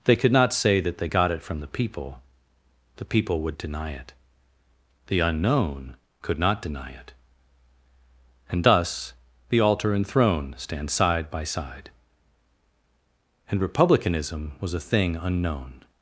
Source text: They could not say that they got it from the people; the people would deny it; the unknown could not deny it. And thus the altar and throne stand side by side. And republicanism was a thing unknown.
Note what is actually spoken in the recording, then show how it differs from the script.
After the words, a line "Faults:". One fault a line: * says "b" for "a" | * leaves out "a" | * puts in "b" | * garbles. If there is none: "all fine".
They could not say that they got it from the people; the people would deny it; the unknown could not deny it. And thus the altar and throne stand side by side. And republicanism was a thing unknown.
Faults:
all fine